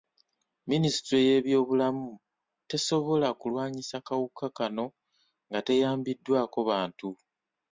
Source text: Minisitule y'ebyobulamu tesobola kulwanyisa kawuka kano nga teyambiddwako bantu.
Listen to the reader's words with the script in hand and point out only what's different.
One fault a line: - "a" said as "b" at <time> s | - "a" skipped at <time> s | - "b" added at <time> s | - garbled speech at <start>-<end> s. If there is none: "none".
none